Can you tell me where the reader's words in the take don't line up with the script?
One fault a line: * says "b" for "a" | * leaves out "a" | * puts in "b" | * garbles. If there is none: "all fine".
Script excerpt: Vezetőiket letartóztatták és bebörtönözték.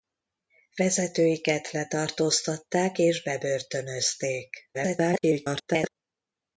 * garbles